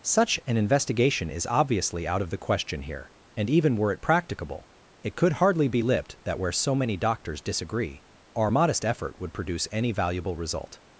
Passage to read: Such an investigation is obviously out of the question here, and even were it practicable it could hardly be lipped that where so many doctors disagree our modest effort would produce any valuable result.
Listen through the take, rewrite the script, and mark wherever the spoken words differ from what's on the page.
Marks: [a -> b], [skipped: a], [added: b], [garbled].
Such an investigation is obviously out of the question here, and even were it practicable it could hardly be lipped that where so many doctors disagree our modest effort would produce any valuable result.